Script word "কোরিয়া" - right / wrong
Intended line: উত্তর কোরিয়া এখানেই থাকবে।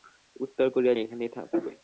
right